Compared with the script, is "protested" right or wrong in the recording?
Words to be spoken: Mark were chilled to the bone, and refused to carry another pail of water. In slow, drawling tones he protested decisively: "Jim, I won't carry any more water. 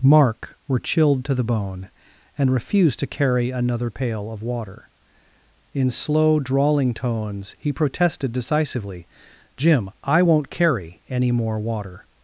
right